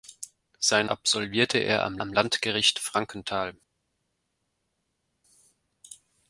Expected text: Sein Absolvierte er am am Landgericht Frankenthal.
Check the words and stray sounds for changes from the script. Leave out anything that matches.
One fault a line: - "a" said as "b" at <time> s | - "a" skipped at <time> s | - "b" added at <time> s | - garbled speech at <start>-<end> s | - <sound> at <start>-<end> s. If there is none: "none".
none